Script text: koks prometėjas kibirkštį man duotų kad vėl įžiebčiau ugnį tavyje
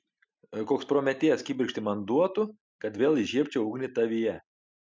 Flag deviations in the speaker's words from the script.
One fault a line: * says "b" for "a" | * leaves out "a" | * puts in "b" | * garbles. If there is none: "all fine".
all fine